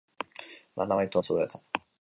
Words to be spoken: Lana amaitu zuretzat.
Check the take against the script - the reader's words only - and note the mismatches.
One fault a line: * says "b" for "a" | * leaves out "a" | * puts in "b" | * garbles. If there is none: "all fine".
all fine